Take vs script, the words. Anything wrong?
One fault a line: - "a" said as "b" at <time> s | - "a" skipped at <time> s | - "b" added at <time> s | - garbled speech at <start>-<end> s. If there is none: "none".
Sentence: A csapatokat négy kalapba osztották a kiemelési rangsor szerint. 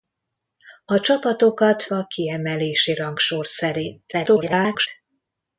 - "négy kalapba osztották" skipped at 1.8 s
- garbled speech at 4.1-4.9 s